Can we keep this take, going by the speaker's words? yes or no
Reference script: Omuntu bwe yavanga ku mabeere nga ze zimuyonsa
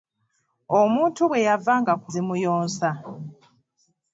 no